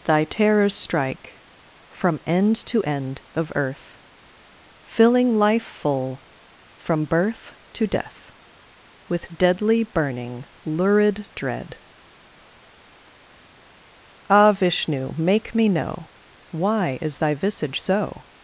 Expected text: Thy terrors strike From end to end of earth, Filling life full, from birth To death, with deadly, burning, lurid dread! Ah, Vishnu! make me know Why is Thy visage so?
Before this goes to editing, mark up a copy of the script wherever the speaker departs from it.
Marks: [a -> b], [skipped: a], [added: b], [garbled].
Thy terrors strike From end to end of earth, Filling life full, from birth To death, with deadly, burning, lurid dread! Ah, Vishnu! make me know Why is Thy visage so?